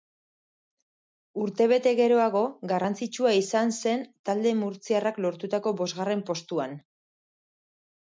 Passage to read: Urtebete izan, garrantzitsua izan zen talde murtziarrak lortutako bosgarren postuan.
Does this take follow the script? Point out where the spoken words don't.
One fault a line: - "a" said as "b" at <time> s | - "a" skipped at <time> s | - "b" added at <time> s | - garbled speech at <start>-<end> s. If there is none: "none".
- "izan" said as "geroago" at 2.0 s